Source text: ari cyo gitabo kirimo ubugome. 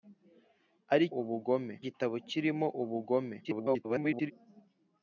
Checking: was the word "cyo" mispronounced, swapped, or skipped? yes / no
yes